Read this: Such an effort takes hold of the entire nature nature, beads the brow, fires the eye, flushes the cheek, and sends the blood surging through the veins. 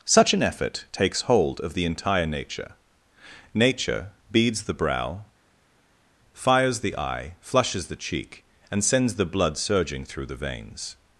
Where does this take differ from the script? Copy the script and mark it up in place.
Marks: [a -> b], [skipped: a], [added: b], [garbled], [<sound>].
Such an effort takes hold of the entire nature nature, beads the brow, fires the eye, flushes the cheek, and sends the blood surging through the veins.